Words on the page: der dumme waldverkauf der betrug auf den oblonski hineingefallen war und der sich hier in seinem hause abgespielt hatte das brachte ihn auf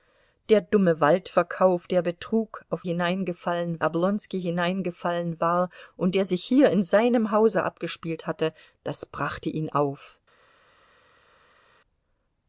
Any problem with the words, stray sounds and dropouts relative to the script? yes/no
yes